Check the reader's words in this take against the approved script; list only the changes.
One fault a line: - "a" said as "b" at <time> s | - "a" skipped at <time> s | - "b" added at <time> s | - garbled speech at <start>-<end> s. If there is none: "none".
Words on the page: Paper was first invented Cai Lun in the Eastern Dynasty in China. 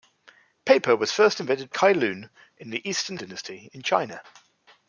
none